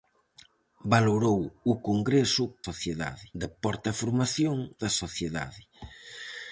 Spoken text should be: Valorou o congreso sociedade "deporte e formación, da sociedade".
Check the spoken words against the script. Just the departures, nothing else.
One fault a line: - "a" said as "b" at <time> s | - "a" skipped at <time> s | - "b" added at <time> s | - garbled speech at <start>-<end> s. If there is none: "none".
none